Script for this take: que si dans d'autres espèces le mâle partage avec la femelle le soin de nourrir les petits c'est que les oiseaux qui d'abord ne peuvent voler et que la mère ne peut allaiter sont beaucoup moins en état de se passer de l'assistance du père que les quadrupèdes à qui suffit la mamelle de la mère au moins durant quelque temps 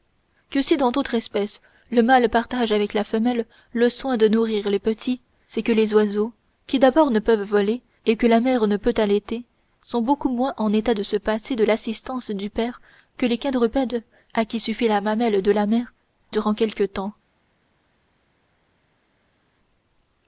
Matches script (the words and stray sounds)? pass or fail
fail